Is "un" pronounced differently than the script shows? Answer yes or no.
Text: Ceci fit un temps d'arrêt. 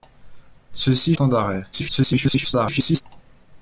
yes